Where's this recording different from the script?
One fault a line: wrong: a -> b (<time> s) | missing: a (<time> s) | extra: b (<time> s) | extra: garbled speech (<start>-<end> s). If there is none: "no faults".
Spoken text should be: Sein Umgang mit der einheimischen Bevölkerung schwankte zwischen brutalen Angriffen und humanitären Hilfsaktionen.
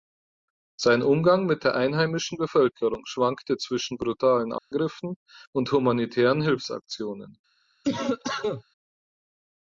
no faults